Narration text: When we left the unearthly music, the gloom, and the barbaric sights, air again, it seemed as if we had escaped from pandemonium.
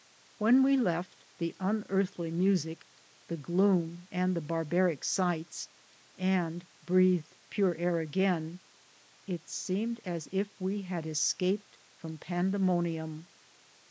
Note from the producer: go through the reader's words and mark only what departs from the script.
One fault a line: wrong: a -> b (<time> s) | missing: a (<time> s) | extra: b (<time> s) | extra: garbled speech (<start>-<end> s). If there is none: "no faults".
extra: and breathed pure (6.2 s)